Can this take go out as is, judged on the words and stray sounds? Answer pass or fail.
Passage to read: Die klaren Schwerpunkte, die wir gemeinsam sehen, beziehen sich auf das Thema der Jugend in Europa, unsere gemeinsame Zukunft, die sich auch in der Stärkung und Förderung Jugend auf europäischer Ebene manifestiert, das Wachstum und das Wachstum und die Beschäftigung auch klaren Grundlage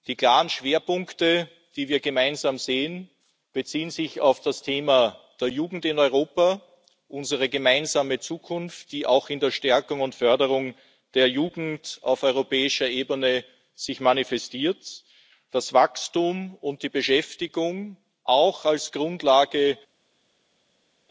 fail